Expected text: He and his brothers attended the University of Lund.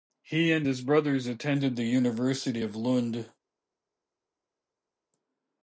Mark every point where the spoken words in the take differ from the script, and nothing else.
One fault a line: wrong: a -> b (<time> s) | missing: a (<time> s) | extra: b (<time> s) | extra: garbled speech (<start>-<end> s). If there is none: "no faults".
no faults